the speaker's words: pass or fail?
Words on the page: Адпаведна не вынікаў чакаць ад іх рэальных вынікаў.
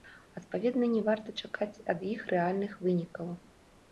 fail